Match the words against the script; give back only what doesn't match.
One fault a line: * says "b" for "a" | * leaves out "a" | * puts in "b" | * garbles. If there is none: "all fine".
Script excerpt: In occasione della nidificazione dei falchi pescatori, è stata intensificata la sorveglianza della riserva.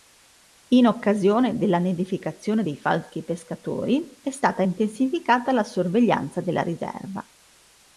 all fine